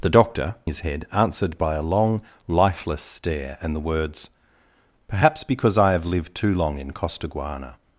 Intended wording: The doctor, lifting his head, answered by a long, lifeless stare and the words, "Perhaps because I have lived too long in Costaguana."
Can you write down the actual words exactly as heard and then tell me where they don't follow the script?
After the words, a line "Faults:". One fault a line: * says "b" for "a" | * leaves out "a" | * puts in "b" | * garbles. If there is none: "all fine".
The doctor, his head, answered by a long, lifeless stare and the words, "Perhaps because I have lived too long in Costaguana."
Faults:
* leaves out "lifting"